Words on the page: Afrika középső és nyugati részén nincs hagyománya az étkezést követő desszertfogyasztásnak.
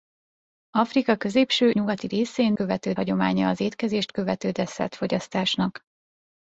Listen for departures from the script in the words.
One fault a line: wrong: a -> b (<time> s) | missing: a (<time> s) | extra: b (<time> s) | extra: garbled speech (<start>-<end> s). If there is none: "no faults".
missing: és (1.7 s)
wrong: nincs -> követő (2.5 s)